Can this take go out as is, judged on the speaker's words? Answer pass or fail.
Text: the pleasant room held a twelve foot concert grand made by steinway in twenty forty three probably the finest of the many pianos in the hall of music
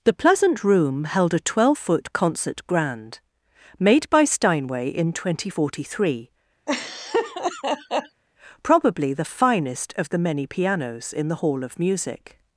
pass